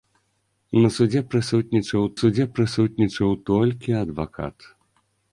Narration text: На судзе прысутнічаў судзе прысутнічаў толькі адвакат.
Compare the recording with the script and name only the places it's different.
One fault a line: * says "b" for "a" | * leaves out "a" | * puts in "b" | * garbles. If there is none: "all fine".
all fine